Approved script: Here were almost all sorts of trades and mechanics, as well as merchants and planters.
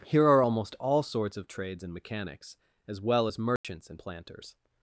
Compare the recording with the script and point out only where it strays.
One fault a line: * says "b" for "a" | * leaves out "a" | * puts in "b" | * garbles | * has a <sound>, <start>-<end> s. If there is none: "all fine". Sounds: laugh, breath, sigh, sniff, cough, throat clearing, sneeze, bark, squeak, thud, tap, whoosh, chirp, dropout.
* says "are" for "were"
* has a dropout, 3.6-3.6 s